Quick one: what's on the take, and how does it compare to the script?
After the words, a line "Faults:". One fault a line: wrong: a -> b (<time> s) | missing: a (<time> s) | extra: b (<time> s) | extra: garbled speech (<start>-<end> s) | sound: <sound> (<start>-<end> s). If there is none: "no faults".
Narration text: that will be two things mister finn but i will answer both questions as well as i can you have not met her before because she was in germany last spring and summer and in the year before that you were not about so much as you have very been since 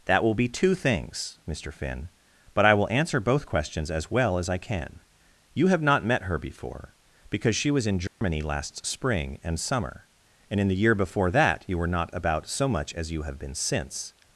that will be two things mister finn but i will answer both questions as well as i can you have not met her before because she was in germany last spring and summer and in the year before that you were not about so much as you have been since
Faults:
sound: dropout (8.1-8.2 s)
missing: very (13.4 s)